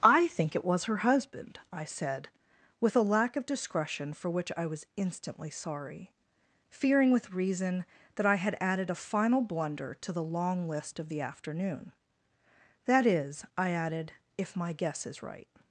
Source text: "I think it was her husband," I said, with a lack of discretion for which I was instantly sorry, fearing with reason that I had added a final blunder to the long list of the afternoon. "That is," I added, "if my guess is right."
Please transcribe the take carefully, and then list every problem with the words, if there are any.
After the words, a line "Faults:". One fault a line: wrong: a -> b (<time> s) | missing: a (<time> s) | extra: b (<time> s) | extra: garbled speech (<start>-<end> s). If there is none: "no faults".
"I think it was her husband," I said, with a lack of discretion for which I was instantly sorry, fearing with reason that I had added a final blunder to the long list of the afternoon. "That is," I added, "if my guess is right."
Faults:
no faults